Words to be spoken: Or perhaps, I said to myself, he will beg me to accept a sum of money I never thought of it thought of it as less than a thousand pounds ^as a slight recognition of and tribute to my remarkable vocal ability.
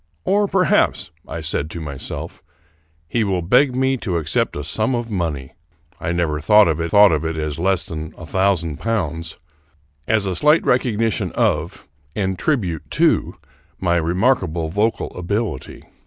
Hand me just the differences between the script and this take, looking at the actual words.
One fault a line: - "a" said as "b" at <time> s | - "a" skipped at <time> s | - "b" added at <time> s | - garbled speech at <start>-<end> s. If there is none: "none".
none